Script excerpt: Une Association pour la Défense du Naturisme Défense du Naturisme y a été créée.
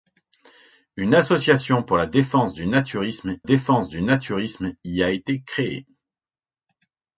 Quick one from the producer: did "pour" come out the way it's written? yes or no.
yes